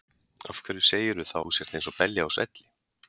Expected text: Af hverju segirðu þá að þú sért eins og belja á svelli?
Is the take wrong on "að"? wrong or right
wrong